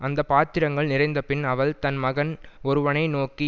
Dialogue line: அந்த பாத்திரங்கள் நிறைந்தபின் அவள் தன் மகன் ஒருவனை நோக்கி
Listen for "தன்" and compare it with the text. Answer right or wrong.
right